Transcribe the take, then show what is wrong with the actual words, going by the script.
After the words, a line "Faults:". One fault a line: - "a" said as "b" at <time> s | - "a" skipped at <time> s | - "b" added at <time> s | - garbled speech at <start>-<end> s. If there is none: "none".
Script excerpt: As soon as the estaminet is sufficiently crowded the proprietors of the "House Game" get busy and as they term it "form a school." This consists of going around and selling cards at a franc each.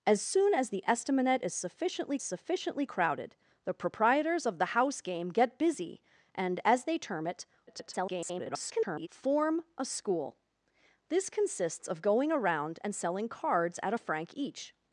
As soon as the estaminet is sufficiently sufficiently crowded the proprietors of the "House Game" get busy and as they term it [garbled] "form a school." This consists of going around and selling cards at a franc each.
Faults:
- "sufficiently" added at 2.2 s
- garbled speech at 7.7-9.1 s